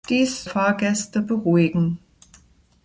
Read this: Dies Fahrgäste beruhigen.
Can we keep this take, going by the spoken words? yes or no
yes